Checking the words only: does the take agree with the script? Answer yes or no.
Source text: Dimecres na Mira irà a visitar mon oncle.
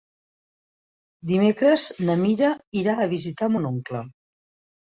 yes